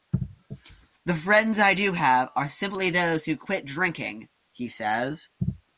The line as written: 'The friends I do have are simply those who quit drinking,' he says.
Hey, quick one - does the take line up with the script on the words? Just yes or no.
yes